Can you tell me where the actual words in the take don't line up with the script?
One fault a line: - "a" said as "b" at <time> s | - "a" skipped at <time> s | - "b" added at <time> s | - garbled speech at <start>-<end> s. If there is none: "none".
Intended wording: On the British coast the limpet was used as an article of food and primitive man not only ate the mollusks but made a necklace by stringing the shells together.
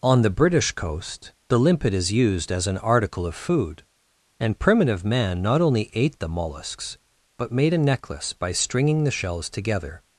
- "was" said as "is" at 1.9 s